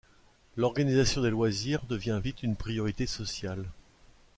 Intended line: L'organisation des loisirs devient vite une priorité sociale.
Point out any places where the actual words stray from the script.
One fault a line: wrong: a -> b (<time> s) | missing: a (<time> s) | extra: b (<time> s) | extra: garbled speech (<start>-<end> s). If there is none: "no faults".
no faults